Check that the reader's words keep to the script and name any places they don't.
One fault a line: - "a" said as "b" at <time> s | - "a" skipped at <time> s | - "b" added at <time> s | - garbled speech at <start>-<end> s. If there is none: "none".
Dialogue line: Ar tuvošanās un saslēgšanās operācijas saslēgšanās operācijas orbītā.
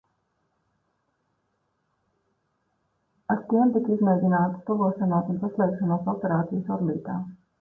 - "tiem tika izmēģinātas" added at 3.5 s
- "saslēgšanās operācijas" skipped at 6.7 s